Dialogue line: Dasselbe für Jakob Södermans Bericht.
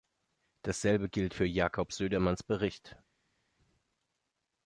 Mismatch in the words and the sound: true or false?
true